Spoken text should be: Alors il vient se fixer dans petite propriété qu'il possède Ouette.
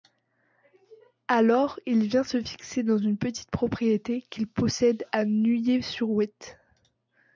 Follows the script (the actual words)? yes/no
no